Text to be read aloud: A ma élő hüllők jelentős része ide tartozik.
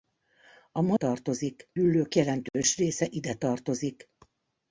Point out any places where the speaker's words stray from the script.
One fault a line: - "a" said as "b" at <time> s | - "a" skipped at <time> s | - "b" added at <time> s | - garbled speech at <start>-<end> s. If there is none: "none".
- "élő" said as "tartozik" at 0.9 s